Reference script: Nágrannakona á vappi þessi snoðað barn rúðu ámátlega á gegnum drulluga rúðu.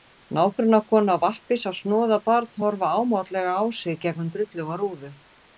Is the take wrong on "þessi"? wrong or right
wrong